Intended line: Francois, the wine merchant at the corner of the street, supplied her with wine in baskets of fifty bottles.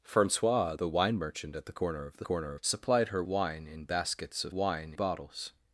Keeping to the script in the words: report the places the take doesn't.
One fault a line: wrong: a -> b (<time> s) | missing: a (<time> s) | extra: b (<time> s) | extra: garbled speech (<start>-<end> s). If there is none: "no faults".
wrong: street -> corner (2.2 s)
missing: with (3.2 s)
wrong: fifty -> wine (4.5 s)